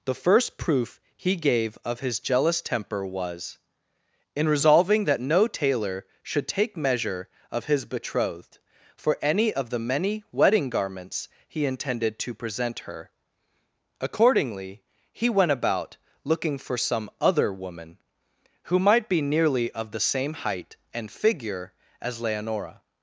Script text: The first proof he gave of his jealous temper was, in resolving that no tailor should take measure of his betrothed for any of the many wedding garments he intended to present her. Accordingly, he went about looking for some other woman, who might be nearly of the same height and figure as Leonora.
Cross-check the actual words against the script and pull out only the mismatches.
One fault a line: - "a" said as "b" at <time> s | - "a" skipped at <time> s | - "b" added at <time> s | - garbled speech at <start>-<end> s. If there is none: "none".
none